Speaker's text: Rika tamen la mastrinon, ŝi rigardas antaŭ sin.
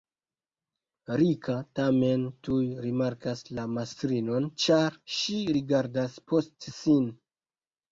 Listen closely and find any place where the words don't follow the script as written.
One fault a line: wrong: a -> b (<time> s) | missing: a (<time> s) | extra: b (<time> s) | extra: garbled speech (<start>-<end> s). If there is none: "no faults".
extra: tuj rimarkas (2.5 s)
extra: ĉar (4.7 s)
wrong: antaŭ -> post (6.3 s)